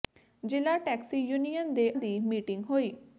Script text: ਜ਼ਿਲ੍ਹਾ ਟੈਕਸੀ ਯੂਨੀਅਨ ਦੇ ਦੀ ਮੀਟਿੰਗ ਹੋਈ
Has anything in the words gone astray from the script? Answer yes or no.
no